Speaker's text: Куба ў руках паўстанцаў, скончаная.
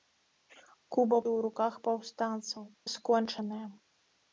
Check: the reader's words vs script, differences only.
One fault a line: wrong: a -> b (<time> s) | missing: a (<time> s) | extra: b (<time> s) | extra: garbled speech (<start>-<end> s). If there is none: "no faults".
no faults